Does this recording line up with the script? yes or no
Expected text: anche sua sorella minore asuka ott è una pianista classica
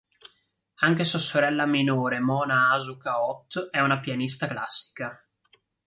no